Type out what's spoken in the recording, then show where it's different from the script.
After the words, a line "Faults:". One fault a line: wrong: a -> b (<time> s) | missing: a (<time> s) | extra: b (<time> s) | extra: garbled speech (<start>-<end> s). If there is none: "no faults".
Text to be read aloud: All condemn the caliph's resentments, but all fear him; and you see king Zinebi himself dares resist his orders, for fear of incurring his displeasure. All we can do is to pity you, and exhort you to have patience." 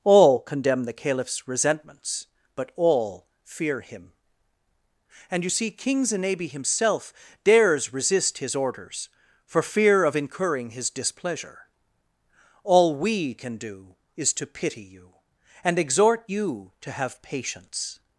All condemn the caliph's resentments, but all fear him; and you see king Zinebi himself dares resist his orders, for fear of incurring his displeasure. All we can do is to pity you, and exhort you to have patience."
Faults:
no faults